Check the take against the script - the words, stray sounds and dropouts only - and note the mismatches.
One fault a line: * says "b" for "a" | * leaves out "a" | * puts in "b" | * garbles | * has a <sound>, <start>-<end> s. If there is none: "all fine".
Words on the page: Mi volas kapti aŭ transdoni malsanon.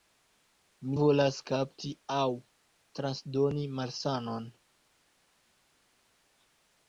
all fine